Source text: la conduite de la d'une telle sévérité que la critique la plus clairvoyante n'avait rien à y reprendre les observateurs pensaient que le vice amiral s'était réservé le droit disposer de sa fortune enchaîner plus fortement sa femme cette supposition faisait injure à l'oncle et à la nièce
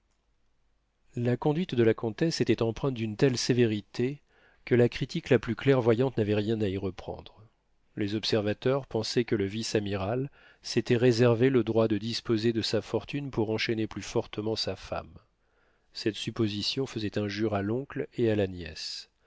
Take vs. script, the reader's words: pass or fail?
fail